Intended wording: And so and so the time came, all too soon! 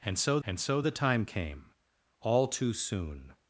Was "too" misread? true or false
false